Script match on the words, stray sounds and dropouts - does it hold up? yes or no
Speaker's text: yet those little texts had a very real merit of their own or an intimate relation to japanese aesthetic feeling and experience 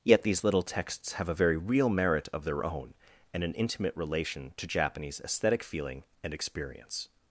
no